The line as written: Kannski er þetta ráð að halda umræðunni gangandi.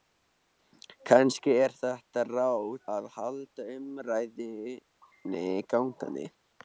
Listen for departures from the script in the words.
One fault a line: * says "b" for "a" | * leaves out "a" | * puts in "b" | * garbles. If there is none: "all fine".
all fine